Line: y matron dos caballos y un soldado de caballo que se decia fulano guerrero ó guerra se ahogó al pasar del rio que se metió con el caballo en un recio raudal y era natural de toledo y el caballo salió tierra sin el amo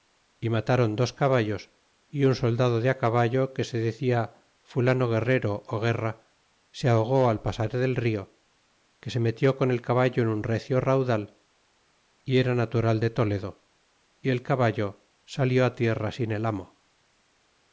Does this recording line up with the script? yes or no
yes